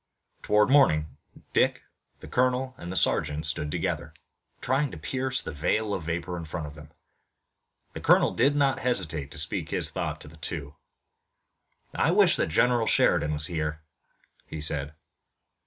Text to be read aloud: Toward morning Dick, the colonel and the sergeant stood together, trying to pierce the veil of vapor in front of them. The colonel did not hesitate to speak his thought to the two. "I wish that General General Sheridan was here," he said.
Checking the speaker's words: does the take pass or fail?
fail